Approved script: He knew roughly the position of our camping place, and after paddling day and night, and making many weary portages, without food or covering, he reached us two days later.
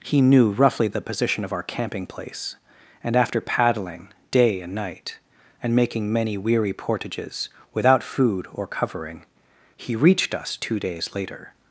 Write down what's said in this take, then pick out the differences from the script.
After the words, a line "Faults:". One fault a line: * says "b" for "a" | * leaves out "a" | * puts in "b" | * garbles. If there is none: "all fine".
He knew roughly the position of our camping place, and after paddling day and night, and making many weary portages, without food or covering, he reached us two days later.
Faults:
all fine